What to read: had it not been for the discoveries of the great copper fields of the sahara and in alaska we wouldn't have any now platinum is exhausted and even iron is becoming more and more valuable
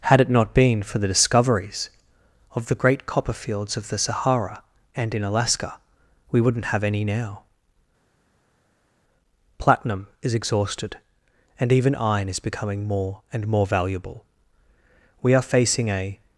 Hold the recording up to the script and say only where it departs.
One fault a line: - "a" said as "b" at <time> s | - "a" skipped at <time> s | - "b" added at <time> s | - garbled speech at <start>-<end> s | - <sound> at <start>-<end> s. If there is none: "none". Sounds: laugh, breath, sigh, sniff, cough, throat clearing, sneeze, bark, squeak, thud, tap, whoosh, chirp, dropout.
- "we are facing a" added at 15.2 s